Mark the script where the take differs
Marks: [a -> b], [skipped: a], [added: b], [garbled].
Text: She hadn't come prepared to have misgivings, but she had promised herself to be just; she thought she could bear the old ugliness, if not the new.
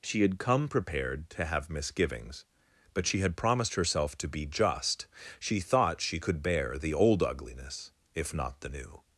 She [hadn't -> had] come prepared to have misgivings, but she had promised herself to be just; she thought she could bear the old ugliness, if not the new.